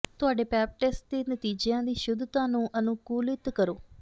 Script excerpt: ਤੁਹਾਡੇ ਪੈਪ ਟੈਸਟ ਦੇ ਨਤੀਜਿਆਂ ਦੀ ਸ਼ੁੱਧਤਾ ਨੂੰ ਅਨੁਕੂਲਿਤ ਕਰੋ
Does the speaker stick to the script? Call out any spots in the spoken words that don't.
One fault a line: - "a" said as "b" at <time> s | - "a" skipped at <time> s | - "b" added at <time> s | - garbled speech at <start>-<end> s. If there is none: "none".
none